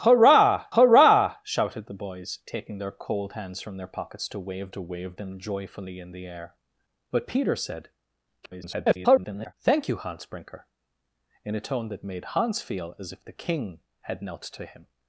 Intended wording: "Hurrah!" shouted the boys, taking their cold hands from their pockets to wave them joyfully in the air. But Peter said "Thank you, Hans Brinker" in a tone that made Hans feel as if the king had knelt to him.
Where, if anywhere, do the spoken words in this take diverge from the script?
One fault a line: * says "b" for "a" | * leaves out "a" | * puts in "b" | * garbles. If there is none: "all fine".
* puts in "hurrah"
* puts in "to wave"
* garbles